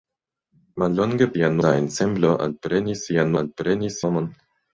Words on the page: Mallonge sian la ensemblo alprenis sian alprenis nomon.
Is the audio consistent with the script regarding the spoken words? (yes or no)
yes